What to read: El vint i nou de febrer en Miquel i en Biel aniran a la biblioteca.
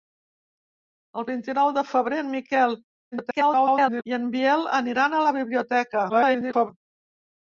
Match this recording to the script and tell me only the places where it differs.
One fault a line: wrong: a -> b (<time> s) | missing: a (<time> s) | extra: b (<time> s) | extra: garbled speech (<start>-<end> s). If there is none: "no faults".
extra: garbled speech (3.1-4.0 s)
extra: garbled speech (6.1-6.7 s)